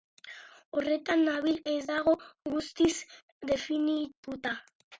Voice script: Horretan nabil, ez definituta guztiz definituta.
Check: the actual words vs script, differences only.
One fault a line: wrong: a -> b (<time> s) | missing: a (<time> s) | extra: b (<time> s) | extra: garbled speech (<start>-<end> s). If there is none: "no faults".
wrong: definituta -> dago (1.9 s)